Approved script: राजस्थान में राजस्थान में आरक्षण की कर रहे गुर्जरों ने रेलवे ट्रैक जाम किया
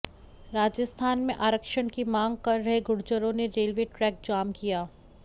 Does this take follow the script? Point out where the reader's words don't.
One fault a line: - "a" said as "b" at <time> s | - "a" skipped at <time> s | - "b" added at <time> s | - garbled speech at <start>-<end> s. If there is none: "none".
- "राजस्थान में" skipped at 1.3 s
- "मांग" added at 2.0 s